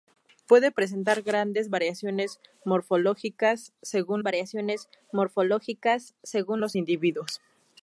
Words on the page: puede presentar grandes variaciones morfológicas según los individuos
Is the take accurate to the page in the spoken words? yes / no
no